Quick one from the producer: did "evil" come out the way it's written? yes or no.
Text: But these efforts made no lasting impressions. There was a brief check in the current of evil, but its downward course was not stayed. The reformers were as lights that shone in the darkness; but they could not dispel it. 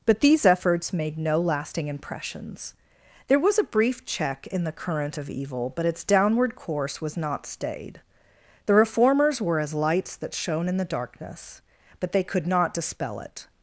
yes